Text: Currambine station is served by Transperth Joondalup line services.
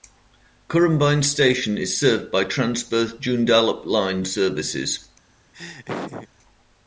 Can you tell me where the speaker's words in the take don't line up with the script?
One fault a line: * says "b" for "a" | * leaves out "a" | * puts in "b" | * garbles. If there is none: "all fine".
all fine